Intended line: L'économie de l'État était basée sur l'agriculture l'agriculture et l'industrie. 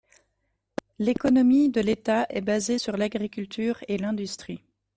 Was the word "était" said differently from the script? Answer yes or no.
yes